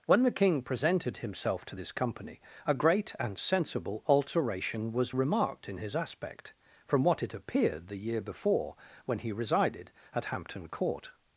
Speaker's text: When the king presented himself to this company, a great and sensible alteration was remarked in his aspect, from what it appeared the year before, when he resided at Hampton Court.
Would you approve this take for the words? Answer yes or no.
yes